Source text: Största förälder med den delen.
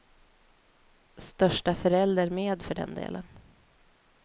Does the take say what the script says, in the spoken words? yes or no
no